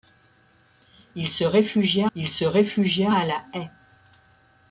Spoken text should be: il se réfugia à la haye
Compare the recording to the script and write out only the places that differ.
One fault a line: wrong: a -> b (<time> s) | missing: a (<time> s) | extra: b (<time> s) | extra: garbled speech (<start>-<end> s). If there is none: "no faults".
extra: il se réfugia (2.1 s)